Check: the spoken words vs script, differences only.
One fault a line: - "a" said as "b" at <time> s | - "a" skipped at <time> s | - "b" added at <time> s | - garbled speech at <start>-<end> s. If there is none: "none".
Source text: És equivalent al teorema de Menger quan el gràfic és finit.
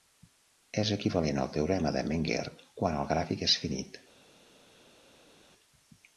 none